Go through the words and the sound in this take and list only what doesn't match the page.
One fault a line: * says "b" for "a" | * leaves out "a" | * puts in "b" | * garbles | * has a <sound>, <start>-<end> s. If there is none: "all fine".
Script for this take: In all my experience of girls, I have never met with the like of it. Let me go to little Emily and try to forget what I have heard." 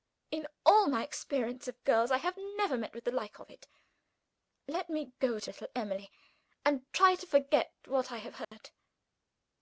* has a dropout, 8.4-8.5 s